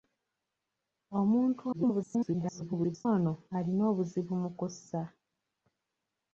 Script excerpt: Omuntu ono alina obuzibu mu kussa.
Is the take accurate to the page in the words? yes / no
no